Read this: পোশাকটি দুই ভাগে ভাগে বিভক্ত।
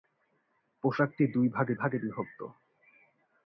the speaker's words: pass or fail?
pass